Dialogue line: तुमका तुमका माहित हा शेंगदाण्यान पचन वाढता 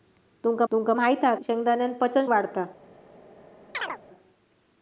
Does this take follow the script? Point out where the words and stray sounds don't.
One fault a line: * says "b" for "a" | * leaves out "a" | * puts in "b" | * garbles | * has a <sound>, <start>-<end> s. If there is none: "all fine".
* has a chirp, 3.7-4.0 s